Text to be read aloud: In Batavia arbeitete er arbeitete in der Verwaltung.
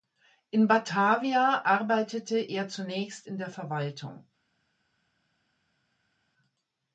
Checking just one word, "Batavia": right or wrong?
right